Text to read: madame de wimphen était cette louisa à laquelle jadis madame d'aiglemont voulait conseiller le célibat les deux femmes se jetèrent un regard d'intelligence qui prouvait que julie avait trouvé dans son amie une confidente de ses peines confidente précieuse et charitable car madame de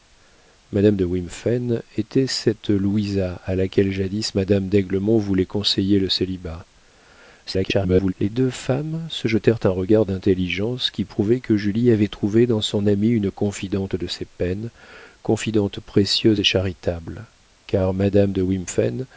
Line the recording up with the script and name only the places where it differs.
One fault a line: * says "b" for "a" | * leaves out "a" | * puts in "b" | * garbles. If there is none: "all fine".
* garbles